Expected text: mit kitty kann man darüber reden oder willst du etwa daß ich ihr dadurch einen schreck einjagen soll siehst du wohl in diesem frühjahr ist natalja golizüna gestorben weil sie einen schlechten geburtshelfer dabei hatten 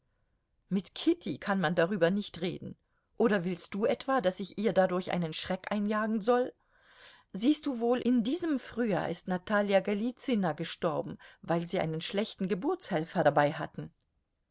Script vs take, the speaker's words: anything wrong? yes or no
yes